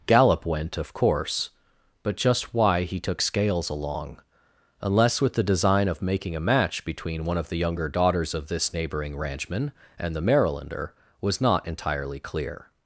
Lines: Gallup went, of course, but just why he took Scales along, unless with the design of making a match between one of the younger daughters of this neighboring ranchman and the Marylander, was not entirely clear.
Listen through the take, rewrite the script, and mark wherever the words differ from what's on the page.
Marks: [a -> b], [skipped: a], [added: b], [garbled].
Gallup went, of course, but just why he took Scales along, unless with the design of making a match between one of the younger daughters of this neighboring ranchman and the Marylander, was not entirely clear.